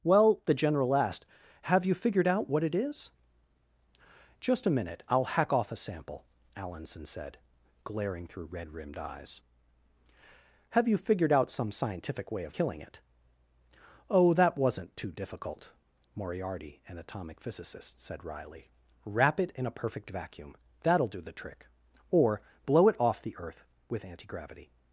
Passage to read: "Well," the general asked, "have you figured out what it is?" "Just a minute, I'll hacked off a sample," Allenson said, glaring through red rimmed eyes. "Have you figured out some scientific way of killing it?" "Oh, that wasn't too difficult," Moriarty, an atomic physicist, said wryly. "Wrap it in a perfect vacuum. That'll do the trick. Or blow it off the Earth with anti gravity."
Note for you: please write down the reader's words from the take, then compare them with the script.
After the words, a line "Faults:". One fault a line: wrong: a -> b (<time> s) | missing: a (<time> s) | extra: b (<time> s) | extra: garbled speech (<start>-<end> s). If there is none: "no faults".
"Well," the general asked, "have you figured out what it is?" "Just a minute, I'll hack off a sample," Allenson said, glaring through red rimmed eyes. "Have you figured out some scientific way of killing it?" "Oh, that wasn't too difficult," Moriarty, an atomic physicist, said wryly. "Wrap it in a perfect vacuum. That'll do the trick. Or blow it off the Earth with anti gravity."
Faults:
wrong: hacked -> hack (5.4 s)